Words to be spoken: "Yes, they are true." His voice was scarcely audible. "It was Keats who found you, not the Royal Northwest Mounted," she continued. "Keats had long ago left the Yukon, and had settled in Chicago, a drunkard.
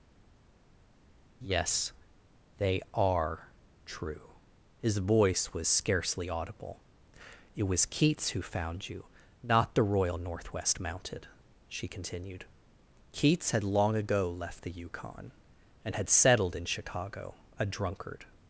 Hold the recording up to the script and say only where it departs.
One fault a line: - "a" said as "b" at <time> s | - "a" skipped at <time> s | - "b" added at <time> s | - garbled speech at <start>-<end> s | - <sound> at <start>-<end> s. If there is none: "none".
none